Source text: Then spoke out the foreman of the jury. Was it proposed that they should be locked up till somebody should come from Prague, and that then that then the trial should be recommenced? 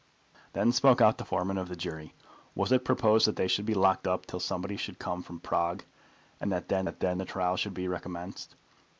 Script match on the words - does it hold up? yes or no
yes